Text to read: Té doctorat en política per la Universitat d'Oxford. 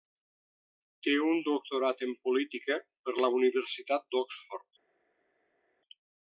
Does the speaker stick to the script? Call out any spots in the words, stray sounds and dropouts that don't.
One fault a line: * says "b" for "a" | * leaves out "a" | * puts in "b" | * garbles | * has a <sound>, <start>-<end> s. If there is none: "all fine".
* puts in "un"